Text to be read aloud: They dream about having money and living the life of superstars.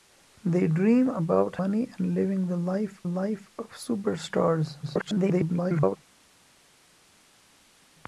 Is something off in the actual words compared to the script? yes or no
yes